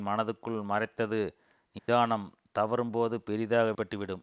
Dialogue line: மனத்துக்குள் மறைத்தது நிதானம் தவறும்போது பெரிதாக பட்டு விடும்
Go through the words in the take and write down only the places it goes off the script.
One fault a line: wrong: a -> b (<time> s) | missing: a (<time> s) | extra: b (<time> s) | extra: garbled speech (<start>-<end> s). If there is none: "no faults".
no faults